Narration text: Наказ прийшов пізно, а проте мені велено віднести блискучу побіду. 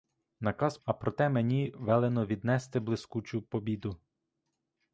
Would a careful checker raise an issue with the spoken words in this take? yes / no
yes